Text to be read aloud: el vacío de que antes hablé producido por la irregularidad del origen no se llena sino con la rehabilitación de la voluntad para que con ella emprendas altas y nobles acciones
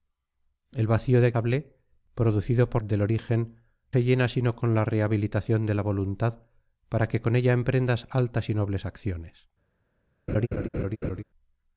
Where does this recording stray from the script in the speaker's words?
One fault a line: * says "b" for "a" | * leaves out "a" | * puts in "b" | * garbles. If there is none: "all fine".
* leaves out "que antes"
* leaves out "la irregularidad"
* leaves out "no"